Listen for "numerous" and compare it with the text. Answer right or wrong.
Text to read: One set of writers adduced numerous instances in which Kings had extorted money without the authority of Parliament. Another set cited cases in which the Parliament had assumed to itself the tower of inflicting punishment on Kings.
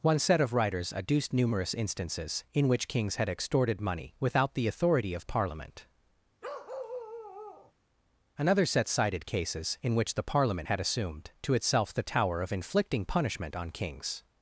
right